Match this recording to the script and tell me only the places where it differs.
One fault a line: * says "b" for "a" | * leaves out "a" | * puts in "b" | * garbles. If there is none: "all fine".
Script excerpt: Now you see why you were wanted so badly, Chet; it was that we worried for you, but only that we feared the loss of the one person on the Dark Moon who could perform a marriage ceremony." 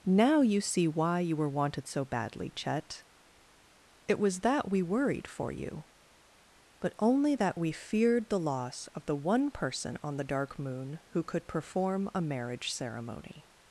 all fine